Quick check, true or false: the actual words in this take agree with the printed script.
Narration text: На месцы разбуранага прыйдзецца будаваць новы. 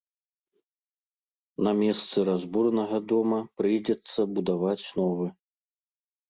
false